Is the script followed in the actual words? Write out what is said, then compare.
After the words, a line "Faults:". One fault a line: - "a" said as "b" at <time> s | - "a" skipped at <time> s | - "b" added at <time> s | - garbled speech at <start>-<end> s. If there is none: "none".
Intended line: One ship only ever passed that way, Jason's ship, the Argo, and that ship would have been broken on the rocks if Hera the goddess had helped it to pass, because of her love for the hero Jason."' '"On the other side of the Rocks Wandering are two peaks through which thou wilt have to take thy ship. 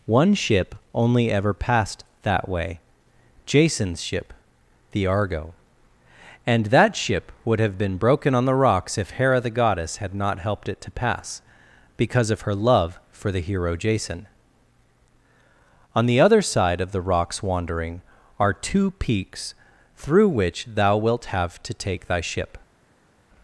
One ship only ever passed that way, Jason's ship, the Argo, and that ship would have been broken on the rocks if Hera the goddess had not helped it to pass, because of her love for the hero Jason."' '"On the other side of the Rocks Wandering are two peaks through which thou wilt have to take thy ship.
Faults:
- "not" added at 10.1 s